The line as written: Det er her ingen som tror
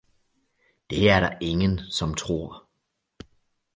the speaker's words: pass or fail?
fail